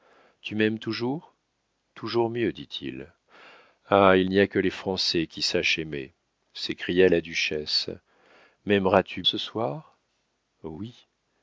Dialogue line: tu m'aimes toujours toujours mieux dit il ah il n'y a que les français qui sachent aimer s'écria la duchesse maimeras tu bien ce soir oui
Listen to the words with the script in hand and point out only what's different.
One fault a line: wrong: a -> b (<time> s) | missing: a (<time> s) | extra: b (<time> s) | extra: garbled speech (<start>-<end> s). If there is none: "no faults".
missing: bien (9.2 s)